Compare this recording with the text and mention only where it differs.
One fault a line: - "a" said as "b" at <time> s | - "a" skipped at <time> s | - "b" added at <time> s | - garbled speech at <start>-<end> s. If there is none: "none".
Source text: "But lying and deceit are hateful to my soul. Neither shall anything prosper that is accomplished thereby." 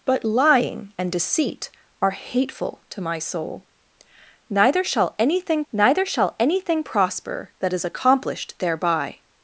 - "neither shall anything" added at 5.7 s